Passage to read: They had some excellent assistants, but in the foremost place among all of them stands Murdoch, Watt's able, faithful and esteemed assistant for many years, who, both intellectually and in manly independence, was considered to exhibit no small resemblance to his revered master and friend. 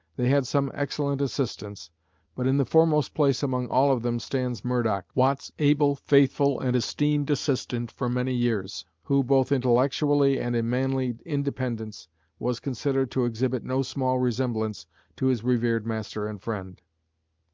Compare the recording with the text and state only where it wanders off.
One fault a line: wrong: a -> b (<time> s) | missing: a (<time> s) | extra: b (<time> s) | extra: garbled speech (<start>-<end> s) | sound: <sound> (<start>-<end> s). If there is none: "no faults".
no faults